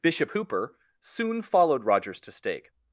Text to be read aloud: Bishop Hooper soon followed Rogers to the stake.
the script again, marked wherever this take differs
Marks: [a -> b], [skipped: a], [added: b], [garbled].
Bishop Hooper soon followed Rogers to [skipped: the] stake.